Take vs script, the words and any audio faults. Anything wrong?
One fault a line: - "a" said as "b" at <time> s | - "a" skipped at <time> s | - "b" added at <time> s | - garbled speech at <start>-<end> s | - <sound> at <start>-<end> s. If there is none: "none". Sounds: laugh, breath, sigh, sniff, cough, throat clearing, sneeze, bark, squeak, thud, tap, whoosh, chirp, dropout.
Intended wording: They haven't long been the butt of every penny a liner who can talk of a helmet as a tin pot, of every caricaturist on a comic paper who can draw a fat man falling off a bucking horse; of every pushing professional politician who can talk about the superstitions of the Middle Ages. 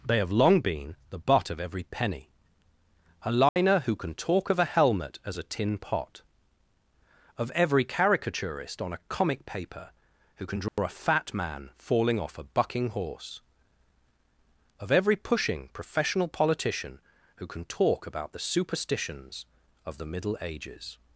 - "haven't" said as "have" at 0.2 s
- dropout at 3.5-3.6 s
- dropout at 10.7-10.8 s